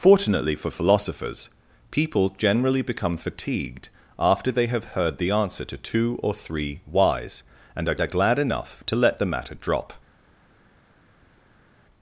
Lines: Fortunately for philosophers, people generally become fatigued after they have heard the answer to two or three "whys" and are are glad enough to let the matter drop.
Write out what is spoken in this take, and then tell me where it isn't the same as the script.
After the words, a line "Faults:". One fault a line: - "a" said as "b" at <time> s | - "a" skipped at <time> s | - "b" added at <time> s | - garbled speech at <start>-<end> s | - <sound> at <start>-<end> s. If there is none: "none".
Fortunately for philosophers, people generally become fatigued after they have heard the answer to two or three "whys" and are are glad enough to let the matter drop.
Faults:
none